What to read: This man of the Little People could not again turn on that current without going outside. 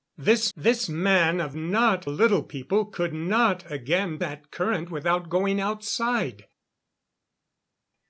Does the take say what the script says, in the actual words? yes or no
no